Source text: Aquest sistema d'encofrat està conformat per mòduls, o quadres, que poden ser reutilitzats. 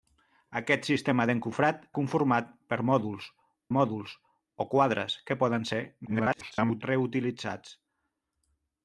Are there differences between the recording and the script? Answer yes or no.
yes